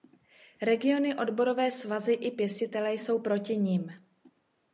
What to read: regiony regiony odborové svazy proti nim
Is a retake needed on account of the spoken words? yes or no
yes